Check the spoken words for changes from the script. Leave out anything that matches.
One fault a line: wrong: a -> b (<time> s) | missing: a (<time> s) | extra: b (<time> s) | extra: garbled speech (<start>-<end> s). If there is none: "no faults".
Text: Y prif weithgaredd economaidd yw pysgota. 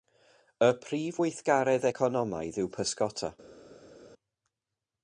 no faults